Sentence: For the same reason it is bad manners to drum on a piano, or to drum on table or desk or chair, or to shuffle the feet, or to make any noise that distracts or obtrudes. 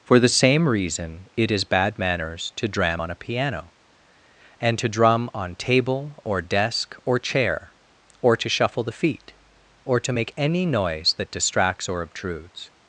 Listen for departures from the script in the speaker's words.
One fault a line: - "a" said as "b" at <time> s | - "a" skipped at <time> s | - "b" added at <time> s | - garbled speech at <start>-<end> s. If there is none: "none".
- "drum" said as "dram" at 2.7 s
- "or" said as "and" at 4.6 s